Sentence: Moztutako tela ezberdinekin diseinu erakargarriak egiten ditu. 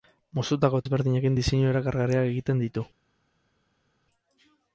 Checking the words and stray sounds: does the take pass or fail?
fail